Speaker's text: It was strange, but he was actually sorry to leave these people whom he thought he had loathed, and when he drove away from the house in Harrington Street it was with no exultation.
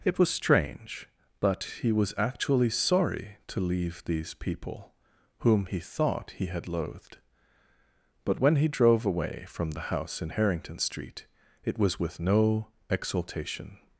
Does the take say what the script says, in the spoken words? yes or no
no